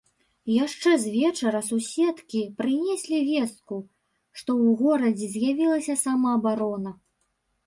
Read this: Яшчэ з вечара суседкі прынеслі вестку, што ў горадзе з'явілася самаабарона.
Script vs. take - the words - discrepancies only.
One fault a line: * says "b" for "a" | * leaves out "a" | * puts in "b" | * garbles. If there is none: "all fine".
all fine